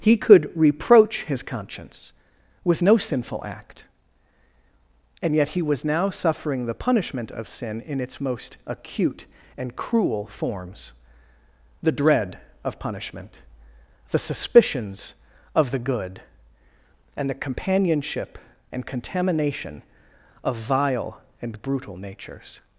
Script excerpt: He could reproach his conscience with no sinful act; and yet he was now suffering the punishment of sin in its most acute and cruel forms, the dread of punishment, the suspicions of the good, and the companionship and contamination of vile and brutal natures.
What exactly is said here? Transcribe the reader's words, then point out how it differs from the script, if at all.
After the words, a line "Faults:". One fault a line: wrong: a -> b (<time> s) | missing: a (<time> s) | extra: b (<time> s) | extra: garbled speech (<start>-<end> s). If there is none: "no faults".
He could reproach his conscience with no sinful act; and yet he was now suffering the punishment of sin in its most acute and cruel forms, the dread of punishment, the suspicions of the good, and the companionship and contamination of vile and brutal natures.
Faults:
no faults